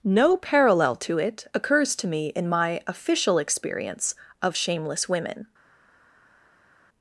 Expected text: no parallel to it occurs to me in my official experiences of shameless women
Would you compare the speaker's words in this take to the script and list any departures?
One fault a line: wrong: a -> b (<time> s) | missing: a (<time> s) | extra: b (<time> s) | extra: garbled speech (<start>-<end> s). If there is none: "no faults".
wrong: experiences -> experience (3.4 s)